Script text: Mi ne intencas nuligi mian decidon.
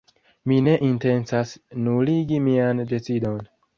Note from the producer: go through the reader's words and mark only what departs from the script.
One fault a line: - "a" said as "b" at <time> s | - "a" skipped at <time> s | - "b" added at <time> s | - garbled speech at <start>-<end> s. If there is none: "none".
none